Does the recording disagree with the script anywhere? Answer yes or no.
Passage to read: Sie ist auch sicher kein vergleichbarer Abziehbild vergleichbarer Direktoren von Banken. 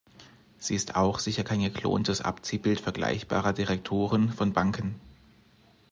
yes